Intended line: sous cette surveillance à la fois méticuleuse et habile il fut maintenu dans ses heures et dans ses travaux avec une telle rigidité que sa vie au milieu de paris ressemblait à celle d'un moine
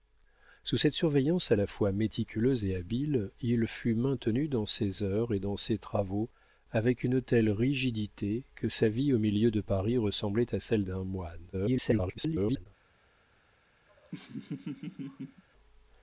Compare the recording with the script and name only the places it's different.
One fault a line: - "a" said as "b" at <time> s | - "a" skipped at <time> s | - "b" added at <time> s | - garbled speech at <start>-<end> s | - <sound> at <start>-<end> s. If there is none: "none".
- garbled speech at 11.5-12.7 s
- laugh at 13.9-15.4 s